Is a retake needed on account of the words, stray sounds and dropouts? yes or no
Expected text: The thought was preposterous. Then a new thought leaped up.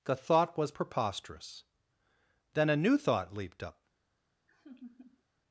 yes